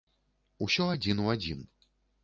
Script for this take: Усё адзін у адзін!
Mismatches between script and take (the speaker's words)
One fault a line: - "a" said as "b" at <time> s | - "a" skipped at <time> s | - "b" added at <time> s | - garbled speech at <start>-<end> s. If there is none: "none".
none